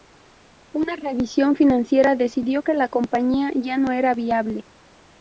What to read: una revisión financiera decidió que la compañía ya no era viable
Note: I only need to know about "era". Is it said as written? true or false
true